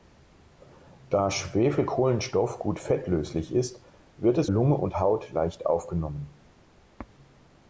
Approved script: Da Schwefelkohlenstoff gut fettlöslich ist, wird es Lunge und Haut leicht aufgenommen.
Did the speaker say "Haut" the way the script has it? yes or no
yes